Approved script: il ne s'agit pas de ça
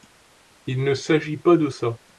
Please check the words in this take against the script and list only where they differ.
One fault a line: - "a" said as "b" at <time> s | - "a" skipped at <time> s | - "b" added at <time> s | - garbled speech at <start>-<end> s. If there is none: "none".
none